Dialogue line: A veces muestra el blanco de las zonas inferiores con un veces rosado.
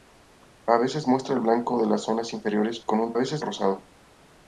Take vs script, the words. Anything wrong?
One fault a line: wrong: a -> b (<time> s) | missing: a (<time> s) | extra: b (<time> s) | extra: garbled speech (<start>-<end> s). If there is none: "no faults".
no faults